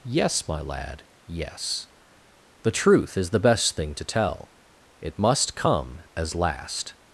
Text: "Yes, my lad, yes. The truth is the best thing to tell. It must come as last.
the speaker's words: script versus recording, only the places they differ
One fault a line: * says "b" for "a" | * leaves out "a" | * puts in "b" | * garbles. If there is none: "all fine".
all fine